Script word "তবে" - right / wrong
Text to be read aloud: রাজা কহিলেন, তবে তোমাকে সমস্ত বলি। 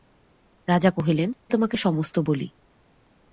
wrong